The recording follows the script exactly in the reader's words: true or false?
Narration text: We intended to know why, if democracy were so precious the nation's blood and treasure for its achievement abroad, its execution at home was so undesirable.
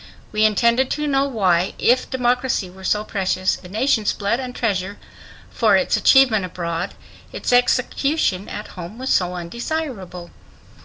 true